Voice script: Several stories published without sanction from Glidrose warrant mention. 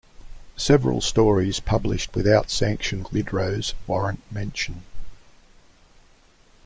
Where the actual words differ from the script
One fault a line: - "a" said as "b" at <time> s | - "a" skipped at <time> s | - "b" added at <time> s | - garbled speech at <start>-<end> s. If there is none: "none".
- "from" skipped at 3.0 s